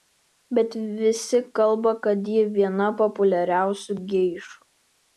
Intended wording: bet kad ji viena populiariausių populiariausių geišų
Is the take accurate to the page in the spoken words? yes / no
no